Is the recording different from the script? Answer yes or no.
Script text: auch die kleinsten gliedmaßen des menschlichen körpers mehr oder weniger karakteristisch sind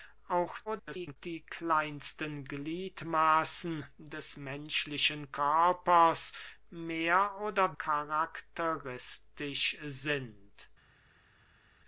yes